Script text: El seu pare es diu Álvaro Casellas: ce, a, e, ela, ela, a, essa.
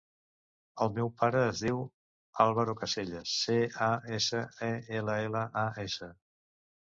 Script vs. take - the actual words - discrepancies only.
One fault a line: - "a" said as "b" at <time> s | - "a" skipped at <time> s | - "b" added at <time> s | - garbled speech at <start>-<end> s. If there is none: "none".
- "seu" said as "meu" at 0.9 s
- "essa" added at 4.2 s